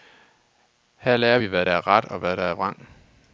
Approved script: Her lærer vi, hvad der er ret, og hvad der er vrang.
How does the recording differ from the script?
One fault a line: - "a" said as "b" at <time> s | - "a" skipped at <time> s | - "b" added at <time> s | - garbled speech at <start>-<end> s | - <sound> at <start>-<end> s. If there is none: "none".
none